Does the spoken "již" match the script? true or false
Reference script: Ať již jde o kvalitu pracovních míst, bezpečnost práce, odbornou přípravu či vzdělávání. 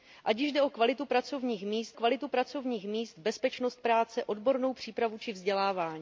true